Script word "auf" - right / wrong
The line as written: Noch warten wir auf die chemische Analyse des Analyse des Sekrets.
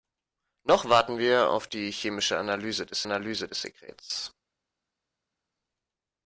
right